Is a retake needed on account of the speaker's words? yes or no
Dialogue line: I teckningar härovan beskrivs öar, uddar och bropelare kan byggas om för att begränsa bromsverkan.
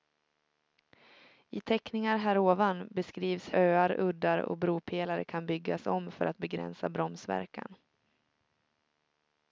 no